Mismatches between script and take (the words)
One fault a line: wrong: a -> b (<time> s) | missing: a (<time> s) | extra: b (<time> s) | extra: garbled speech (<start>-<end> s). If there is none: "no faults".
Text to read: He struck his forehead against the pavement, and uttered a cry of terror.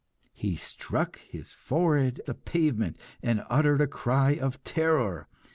missing: against (2.2 s)